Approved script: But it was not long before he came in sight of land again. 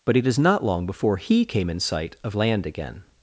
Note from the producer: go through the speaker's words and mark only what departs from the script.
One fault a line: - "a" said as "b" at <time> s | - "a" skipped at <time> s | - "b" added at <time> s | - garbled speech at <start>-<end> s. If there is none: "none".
- "was" said as "is" at 0.2 s